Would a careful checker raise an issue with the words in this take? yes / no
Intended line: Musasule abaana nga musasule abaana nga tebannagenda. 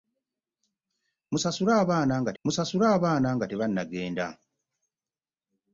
no